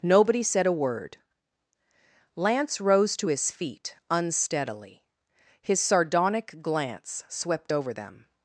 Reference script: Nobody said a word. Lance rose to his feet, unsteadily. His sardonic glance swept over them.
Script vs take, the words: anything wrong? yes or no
no